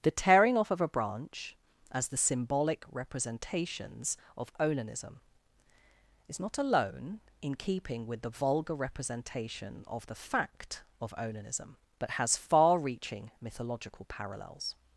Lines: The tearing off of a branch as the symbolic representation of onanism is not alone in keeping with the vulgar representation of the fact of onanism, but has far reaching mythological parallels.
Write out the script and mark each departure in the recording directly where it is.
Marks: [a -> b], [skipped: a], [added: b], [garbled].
The tearing off of a branch as the symbolic [representation -> representations] of onanism is not alone in keeping with the vulgar representation of the fact of onanism, but has far reaching mythological parallels.